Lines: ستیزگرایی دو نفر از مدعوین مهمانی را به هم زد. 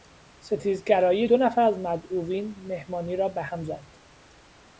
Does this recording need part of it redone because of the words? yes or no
no